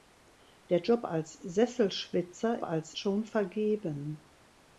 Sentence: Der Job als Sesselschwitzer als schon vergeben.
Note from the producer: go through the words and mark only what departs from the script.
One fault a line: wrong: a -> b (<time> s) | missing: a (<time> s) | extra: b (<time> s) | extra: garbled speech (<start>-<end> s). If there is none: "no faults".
no faults